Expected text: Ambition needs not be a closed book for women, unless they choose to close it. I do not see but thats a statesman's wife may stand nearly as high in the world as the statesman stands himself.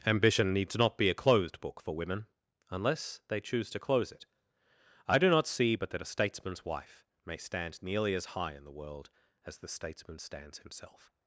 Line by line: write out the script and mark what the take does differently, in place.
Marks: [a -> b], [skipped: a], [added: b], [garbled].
Ambition needs not be a closed book for women, unless they choose to close it. I do not see but [thats -> that] a statesman's wife may stand nearly as high in the world as the statesman stands himself.